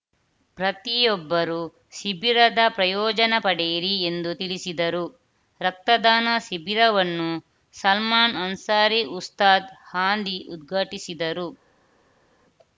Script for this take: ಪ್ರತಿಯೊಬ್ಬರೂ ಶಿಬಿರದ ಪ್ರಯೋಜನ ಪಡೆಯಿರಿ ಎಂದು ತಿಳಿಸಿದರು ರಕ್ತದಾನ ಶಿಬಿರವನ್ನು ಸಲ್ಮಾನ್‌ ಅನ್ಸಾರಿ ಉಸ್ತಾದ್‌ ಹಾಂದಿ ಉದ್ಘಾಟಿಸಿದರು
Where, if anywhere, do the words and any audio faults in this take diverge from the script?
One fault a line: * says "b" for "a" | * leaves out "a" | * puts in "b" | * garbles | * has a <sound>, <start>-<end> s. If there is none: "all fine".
all fine